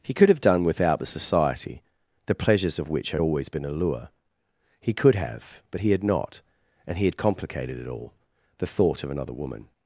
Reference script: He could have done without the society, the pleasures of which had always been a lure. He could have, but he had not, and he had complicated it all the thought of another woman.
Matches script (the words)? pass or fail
pass